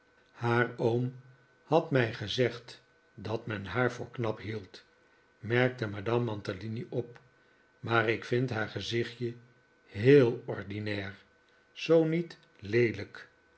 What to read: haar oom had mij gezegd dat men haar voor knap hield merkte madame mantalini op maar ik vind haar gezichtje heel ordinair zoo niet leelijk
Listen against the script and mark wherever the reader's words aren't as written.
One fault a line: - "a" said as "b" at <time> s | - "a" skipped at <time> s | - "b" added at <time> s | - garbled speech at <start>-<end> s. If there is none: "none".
none